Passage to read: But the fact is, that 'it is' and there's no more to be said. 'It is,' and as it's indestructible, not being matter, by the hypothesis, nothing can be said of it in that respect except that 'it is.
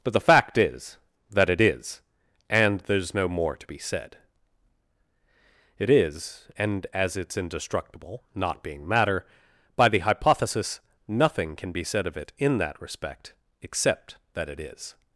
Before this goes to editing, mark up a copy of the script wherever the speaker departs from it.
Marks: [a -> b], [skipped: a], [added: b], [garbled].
But the fact is, that 'it is' and there's no more to be said. 'It is,' and as it's indestructible, not being matter, by the hypothesis, nothing can be said of it in that respect except that 'it is.